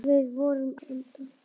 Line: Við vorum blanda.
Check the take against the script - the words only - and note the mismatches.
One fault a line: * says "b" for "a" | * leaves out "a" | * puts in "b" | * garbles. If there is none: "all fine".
all fine